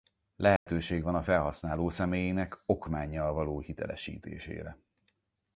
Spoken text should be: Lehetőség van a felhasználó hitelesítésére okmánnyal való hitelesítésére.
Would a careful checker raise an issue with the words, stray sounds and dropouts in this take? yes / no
yes